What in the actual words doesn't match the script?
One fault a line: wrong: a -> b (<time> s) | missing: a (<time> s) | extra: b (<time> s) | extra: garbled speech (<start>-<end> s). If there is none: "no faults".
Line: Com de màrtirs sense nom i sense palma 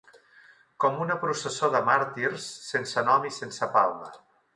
extra: una processó (1.0 s)